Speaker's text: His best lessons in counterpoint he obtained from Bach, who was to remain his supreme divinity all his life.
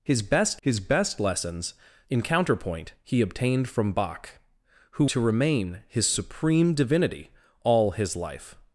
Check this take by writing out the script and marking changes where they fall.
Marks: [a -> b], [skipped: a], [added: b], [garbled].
His best [added: his best] lessons in counterpoint he obtained from Bach, who [skipped: was] to remain his supreme divinity all his life.